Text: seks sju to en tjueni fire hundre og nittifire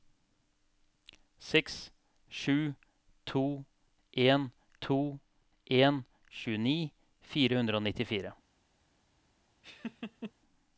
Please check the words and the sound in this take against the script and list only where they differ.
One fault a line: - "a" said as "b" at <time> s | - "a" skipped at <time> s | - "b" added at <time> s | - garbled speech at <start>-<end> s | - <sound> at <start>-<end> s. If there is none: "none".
- "to en" added at 4.9 s
- laugh at 9.6-10.3 s